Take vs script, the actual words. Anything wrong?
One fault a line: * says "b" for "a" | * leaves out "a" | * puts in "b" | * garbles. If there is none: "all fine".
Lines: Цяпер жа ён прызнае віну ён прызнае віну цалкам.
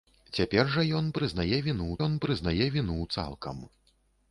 all fine